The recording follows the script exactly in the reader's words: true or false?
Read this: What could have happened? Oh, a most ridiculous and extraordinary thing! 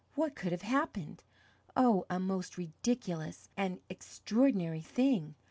true